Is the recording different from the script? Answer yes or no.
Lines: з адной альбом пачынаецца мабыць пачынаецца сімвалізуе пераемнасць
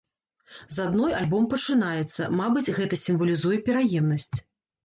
yes